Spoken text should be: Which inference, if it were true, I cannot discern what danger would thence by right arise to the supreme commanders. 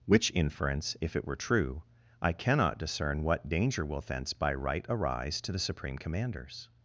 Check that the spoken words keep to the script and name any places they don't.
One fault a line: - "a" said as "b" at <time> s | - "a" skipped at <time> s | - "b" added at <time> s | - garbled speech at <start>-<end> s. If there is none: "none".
- "would" said as "will" at 3.9 s